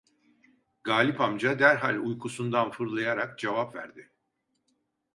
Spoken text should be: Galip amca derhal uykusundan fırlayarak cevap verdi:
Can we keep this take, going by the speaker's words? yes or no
yes